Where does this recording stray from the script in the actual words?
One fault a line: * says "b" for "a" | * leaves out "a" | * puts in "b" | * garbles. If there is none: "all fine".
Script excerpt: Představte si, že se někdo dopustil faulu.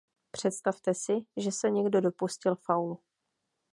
all fine